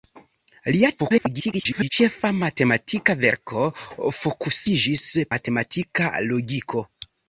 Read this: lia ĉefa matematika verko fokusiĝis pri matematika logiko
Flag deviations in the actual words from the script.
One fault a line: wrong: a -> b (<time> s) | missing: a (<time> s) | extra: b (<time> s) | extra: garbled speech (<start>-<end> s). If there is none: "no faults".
extra: garbled speech (1.0-1.9 s)
missing: pri (5.1 s)